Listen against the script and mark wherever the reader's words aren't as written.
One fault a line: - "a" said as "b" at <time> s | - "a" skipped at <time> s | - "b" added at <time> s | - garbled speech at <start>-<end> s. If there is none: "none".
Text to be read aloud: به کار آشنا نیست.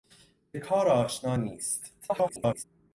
- garbled speech at 2.0-2.6 s